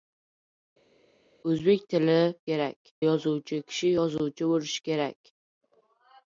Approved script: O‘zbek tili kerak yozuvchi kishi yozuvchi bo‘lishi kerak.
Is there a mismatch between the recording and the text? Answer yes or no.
no